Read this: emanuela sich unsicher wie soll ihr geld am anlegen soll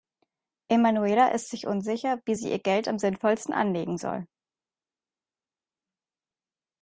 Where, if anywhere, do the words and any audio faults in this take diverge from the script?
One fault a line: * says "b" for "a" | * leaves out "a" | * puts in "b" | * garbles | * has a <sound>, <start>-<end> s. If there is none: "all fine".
* puts in "ist"
* says "sie" for "soll"
* puts in "sinnvollsten"